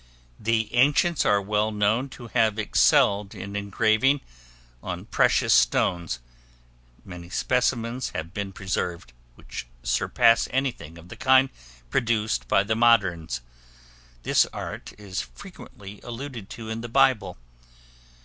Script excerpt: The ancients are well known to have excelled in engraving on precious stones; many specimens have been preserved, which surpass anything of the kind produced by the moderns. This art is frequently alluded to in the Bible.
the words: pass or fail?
pass